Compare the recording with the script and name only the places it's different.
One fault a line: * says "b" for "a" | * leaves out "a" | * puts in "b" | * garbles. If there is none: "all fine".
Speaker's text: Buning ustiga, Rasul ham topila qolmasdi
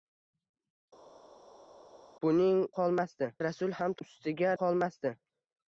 * says "qolmasdi" for "ustiga"
* says "ustiga" for "topila"